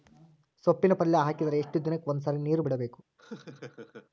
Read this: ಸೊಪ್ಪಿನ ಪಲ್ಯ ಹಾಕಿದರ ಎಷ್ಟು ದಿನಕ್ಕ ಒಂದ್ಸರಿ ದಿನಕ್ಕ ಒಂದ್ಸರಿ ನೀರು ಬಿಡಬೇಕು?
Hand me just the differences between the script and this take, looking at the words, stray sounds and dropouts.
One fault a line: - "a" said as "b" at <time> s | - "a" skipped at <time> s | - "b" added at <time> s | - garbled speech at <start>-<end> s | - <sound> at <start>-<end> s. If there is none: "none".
- "ದಿನಕ್ಕ ಒಂದ್ಸರಿ" skipped at 2.4 s
- laugh at 3.2-4.1 s